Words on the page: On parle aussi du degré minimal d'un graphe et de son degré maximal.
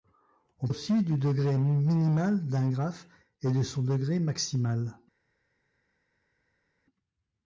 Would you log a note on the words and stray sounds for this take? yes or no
yes